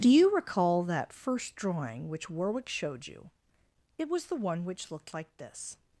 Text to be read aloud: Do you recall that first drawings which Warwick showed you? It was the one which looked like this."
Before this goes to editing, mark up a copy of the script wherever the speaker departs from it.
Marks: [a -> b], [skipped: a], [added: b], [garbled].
Do you recall that first [drawings -> drawing] which Warwick showed you? It was the one which looked like this."